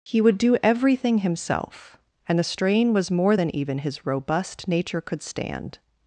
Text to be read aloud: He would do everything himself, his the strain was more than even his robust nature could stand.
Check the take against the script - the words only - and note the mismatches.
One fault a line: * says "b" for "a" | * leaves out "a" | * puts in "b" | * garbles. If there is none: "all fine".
* says "and" for "his"